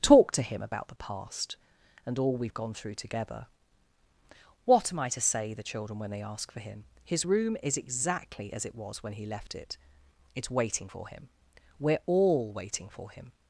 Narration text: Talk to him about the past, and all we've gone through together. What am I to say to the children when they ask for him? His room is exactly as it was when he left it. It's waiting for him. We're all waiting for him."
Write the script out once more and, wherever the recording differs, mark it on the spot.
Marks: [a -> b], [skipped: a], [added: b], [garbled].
Talk to him about the past, and all we've gone through together. What am I to say [skipped: to] the children when they ask for him? His room is exactly as it was when he left it. It's waiting for him. We're all waiting for him."